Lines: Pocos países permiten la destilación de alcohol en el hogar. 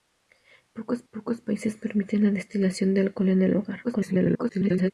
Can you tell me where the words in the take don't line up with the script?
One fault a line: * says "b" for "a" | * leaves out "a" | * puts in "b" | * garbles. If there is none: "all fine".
* puts in "pocos"
* garbles